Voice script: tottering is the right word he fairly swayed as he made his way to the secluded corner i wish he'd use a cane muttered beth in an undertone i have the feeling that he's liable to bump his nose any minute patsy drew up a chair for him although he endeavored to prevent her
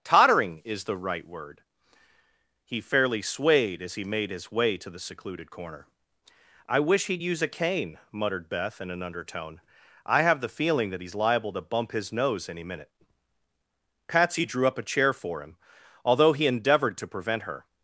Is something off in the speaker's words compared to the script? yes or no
no